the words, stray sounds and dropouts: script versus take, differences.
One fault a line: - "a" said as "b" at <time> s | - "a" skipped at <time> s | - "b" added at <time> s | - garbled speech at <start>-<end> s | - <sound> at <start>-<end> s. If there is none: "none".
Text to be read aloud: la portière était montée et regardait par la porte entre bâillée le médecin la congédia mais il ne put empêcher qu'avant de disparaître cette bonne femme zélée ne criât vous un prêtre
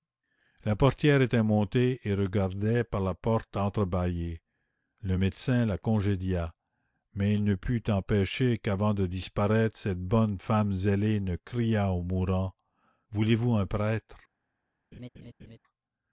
- "au mourant voulez" added at 11.9 s
- laugh at 14.9-15.6 s